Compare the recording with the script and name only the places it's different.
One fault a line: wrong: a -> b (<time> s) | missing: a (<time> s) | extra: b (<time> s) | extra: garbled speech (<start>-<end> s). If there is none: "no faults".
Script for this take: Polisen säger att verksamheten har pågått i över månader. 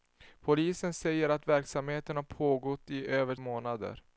no faults